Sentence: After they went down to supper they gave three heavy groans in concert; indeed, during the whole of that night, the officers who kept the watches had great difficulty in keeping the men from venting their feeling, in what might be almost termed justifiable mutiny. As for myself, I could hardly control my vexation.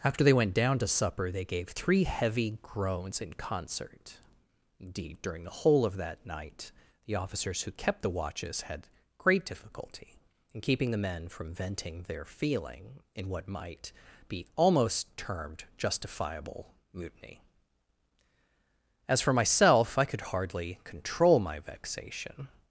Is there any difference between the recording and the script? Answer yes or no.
no